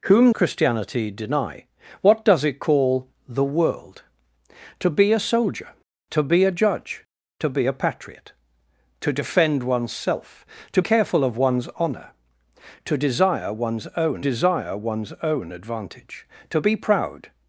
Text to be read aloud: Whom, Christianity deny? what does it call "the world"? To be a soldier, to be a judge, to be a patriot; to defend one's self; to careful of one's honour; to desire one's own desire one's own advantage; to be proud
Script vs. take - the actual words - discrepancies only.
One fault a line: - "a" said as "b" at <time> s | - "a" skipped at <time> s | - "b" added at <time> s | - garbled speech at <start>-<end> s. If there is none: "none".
none